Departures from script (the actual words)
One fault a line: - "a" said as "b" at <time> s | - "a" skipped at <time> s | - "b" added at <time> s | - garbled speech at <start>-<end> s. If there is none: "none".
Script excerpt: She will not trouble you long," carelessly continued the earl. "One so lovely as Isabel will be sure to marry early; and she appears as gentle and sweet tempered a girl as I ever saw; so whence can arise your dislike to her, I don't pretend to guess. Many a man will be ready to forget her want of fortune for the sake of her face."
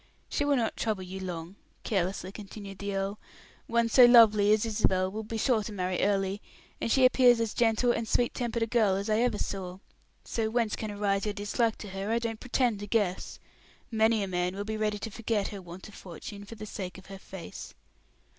none